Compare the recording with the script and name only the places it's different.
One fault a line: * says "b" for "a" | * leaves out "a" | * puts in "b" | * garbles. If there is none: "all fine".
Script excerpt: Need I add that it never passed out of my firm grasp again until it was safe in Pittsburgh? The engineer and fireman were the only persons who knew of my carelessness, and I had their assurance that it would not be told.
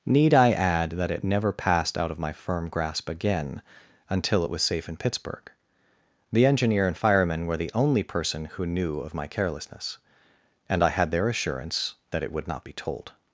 * says "person" for "persons"